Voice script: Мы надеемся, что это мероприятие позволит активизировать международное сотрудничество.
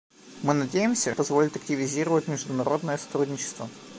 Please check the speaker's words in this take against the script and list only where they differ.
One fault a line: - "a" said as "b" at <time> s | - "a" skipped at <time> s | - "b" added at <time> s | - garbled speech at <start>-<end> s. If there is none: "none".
- "что это мероприятие" skipped at 1.1 s